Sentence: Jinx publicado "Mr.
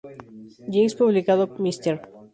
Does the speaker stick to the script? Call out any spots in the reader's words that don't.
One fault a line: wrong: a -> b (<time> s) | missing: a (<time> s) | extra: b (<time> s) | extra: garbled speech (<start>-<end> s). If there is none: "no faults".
no faults